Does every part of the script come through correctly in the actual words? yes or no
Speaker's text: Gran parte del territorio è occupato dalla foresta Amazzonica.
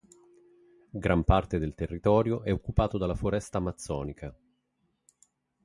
yes